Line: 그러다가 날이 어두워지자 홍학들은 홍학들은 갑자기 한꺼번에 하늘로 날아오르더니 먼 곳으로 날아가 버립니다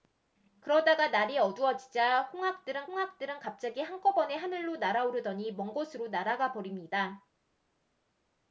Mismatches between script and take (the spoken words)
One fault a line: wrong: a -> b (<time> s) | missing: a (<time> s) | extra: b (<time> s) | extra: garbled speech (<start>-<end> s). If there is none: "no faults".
no faults